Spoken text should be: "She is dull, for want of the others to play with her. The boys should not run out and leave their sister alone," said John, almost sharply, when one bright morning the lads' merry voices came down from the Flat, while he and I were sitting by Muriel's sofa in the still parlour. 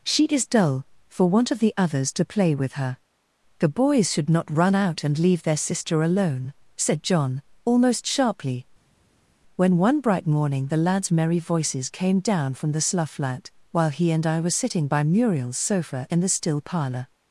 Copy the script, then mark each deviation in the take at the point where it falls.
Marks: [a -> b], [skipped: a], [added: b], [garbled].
"She is dull, for want of the others to play with her. The boys should not run out and leave their sister alone," said John, almost sharply, when one bright morning the lads' merry voices came down from the [added: slough] Flat, while he and I were sitting by Muriel's sofa in the still parlour.